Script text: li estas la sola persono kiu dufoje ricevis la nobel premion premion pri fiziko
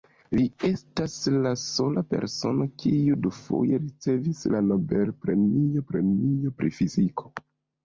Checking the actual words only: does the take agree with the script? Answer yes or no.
yes